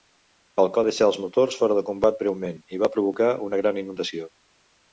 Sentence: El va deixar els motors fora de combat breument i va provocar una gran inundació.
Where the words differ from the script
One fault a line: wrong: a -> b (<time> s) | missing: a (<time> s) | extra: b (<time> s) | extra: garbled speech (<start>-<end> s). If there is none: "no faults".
no faults